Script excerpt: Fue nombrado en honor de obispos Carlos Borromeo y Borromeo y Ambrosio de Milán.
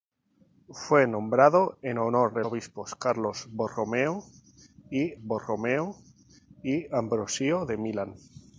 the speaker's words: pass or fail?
pass